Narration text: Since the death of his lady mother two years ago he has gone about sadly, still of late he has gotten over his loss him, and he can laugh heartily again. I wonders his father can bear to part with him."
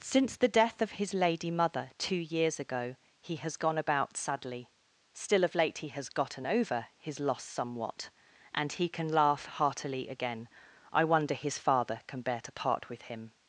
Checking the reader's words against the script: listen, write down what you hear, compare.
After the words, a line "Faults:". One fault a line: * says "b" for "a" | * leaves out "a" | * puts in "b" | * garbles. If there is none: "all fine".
Since the death of his lady mother two years ago he has gone about sadly, still of late he has gotten over his loss somewhat, and he can laugh heartily again. I wonder his father can bear to part with him."
Faults:
* says "somewhat" for "him"
* says "wonder" for "wonders"